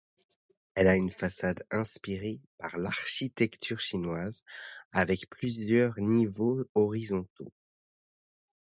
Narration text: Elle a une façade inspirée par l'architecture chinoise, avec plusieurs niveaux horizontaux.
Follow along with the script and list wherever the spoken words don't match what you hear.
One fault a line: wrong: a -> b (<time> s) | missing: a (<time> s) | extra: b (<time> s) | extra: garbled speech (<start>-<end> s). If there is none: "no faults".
no faults